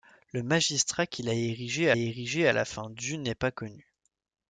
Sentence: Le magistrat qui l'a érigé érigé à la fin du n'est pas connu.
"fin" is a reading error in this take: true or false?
false